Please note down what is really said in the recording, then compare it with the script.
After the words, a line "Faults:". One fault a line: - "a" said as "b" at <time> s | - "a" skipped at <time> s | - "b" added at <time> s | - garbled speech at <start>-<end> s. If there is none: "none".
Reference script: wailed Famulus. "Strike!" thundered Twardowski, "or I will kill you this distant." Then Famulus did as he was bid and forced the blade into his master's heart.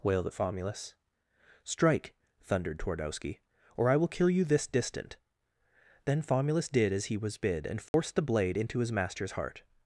wailed Famulus. "Strike!" thundered Twardowski, "or I will kill you this distant." Then Famulus did as he was bid and forced the blade into his master's heart.
Faults:
none